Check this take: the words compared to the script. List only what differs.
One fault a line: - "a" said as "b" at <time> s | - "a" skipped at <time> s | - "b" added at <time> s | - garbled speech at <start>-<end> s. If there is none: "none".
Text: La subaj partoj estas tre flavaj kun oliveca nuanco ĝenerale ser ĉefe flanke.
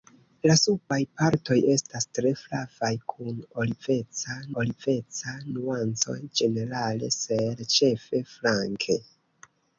- "oliveca" added at 4.6 s